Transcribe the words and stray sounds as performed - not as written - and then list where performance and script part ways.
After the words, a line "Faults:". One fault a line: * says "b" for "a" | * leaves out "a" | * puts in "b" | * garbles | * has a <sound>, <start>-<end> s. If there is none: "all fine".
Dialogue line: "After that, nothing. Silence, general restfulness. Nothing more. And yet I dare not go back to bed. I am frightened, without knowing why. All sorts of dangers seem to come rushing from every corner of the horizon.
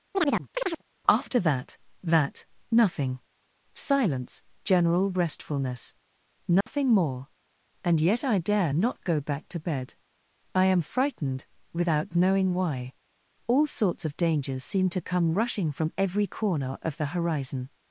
"After that that, nothing. Silence, general restfulness. Nothing more. And yet I dare not go back to bed. I am frightened, without knowing why. All sorts of dangers seem to come rushing from every corner of the horizon.
Faults:
* has a chirp, 0.1-0.8 s
* puts in "that"
* has a dropout, 6.6-6.7 s